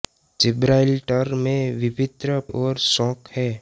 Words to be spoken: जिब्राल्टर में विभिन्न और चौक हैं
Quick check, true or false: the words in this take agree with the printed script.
true